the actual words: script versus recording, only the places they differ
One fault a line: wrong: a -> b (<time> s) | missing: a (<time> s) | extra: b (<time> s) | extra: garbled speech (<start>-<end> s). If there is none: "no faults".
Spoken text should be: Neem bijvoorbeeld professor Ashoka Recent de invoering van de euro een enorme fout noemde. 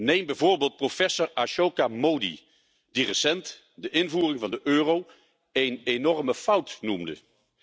extra: Mody die (1.9 s)